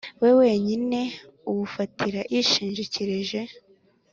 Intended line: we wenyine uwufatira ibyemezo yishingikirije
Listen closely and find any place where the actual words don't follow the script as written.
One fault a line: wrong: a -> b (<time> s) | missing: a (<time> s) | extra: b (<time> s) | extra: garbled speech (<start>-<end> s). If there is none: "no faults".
missing: ibyemezo (2.2 s)